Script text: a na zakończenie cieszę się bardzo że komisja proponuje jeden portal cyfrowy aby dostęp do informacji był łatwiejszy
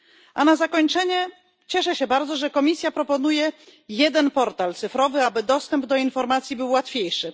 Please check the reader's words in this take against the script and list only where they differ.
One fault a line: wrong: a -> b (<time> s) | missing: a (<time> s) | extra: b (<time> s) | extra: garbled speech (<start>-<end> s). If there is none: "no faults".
no faults